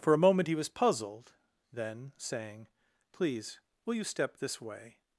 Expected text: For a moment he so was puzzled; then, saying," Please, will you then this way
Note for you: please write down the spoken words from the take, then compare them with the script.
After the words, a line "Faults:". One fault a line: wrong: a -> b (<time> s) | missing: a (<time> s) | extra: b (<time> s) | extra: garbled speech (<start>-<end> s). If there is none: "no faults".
For a moment he was puzzled; then, saying," Please, will you step this way
Faults:
missing: so (0.6 s)
wrong: then -> step (4.0 s)